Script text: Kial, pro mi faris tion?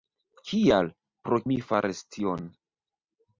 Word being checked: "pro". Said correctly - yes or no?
yes